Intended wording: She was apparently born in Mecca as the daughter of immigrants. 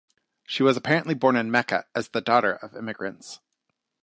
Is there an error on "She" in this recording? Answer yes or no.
no